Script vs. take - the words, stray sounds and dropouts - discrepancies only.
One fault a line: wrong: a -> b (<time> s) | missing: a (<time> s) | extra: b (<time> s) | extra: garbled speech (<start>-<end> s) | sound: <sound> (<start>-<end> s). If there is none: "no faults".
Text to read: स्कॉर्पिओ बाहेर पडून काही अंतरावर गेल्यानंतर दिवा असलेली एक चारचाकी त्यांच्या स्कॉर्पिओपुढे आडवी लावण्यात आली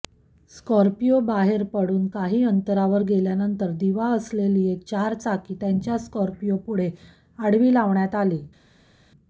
no faults